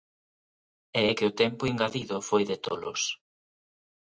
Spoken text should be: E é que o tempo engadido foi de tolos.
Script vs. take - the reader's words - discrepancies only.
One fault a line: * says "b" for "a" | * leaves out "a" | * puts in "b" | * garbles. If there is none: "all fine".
all fine